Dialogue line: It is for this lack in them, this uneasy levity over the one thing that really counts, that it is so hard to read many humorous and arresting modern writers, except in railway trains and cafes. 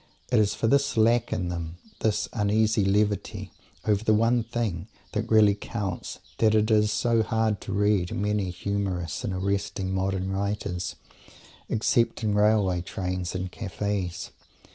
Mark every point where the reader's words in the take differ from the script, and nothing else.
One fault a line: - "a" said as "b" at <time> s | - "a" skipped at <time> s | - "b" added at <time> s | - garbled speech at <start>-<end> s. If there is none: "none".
none